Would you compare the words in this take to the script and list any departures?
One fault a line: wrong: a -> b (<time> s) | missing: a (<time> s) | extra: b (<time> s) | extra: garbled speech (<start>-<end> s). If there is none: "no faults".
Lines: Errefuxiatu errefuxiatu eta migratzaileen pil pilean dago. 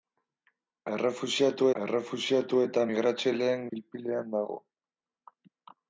no faults